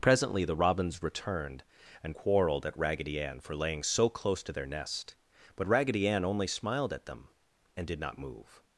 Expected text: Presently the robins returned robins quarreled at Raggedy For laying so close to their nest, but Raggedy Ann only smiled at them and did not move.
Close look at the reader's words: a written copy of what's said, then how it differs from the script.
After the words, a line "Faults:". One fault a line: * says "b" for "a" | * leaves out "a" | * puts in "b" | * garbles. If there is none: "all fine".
Presently the robins returned and quarreled at Raggedy Ann for laying so close to their nest, but Raggedy Ann only smiled at them and did not move.
Faults:
* says "and" for "robins"
* puts in "Ann"